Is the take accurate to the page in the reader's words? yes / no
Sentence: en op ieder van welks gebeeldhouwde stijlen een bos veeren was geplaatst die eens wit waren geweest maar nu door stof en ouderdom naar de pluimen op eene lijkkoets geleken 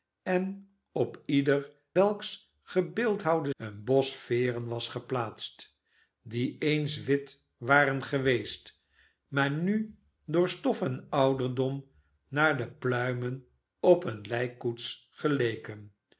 no